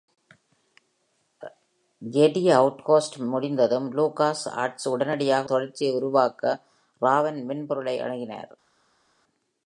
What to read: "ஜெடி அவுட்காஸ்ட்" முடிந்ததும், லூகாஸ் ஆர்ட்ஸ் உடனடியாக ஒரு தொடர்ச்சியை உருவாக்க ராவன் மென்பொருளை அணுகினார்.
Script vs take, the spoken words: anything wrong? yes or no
yes